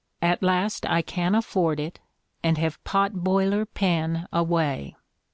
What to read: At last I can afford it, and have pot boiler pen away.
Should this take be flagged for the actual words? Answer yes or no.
no